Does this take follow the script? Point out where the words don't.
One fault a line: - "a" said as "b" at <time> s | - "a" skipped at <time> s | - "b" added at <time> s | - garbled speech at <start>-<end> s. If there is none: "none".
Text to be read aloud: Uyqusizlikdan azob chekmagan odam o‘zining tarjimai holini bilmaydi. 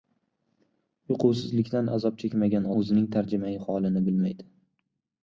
- "odam" skipped at 2.7 s